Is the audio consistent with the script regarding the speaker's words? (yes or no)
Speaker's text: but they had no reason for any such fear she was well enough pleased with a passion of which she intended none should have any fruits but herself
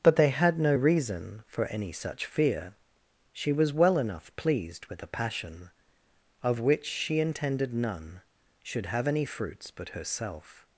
yes